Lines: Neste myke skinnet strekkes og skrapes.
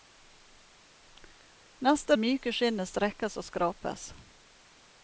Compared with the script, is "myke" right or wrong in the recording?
right